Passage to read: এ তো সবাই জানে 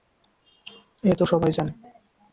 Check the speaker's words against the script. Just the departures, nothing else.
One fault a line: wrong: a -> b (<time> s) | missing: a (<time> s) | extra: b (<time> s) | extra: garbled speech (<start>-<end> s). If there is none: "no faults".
no faults